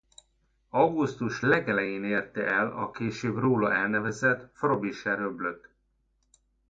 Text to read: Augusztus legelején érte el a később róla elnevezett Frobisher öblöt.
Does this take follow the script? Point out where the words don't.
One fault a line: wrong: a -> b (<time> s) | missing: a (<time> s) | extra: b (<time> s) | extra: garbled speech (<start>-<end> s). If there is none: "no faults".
no faults